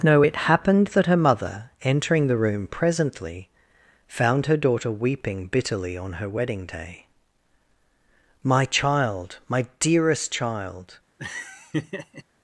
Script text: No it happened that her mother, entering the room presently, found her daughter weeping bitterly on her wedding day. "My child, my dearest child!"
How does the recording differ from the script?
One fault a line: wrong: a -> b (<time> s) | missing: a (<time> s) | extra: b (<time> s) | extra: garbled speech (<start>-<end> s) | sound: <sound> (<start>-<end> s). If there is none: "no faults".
sound: laugh (11.2-12.2 s)